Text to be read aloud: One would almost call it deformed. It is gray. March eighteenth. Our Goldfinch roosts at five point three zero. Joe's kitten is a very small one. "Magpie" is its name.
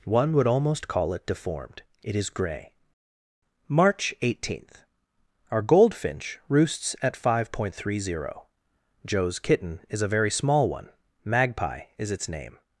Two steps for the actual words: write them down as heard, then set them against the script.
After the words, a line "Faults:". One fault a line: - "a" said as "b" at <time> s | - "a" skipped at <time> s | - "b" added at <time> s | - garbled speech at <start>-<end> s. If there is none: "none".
One would almost call it deformed. It is gray. March eighteenth. Our Goldfinch roosts at five point three zero. Joe's kitten is a very small one. "Magpie" is its name.
Faults:
none